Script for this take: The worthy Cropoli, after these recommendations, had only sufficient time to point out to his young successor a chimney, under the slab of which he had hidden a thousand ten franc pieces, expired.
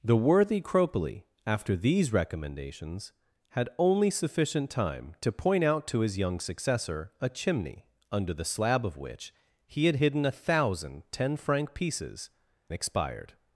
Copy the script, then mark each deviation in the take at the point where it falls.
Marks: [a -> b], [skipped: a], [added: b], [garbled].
The worthy Cropoli, after these recommendations, had only sufficient time to point out to his young successor a chimney, under the slab of which he had hidden a thousand ten franc pieces, expired.